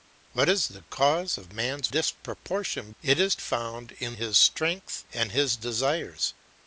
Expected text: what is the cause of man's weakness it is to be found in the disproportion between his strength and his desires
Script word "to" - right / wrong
wrong